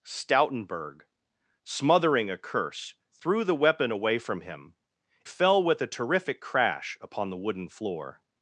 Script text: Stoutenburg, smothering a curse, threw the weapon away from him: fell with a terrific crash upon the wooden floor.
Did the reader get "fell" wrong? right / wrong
right